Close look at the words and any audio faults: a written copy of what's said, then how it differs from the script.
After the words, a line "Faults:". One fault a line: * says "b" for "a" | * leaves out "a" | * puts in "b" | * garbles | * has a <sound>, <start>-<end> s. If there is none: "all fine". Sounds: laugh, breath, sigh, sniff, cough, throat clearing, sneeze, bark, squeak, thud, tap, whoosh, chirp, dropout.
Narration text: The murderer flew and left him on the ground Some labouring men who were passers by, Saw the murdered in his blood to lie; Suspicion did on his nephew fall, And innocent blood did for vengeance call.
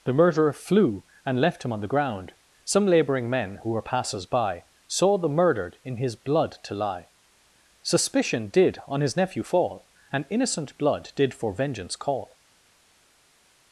The murderer flew and left him on the ground Some labouring men who were passers by, Saw the murdered in his blood to lie; Suspicion did on his nephew fall, And innocent blood did for vengeance call.
Faults:
all fine